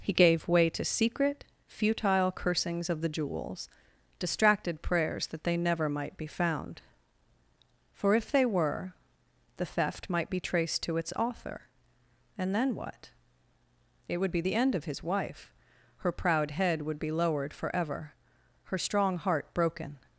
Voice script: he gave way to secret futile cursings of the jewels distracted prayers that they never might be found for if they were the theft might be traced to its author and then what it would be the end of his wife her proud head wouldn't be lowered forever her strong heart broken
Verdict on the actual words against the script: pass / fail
fail